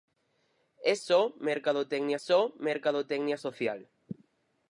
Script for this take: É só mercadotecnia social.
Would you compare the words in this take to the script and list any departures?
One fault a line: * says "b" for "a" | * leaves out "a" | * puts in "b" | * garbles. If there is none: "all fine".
* puts in "só mercadotecnia"